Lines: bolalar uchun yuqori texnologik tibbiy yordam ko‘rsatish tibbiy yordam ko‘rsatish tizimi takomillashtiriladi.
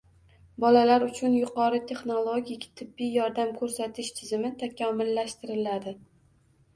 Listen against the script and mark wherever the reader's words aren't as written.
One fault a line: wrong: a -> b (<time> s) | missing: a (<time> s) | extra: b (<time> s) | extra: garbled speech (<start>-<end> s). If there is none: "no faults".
missing: tibbiy yordam ko‘rsatish (4.1 s)